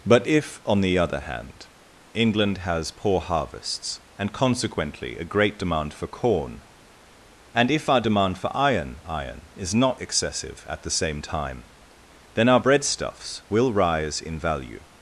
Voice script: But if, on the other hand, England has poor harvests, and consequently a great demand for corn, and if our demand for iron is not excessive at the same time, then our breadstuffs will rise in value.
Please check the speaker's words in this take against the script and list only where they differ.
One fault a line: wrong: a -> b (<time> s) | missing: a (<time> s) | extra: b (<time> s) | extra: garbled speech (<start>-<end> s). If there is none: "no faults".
extra: iron (9.1 s)